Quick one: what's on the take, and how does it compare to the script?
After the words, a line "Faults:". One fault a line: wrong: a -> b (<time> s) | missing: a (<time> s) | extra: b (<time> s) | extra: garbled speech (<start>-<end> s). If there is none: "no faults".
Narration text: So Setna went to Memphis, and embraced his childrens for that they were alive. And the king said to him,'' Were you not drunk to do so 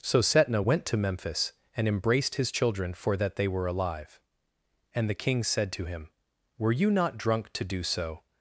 So Setna went to Memphis, and embraced his children for that they were alive. And the king said to him,'' Were you not drunk to do so
Faults:
wrong: childrens -> children (2.5 s)